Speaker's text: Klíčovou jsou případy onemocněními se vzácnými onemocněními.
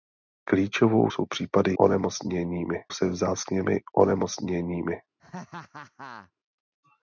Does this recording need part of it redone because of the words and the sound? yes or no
yes